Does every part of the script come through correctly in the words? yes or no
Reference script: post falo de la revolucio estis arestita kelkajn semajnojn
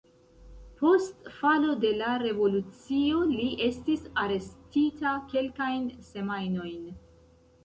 no